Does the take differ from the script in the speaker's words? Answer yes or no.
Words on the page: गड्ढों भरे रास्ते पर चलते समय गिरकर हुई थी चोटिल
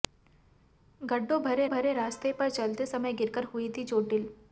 yes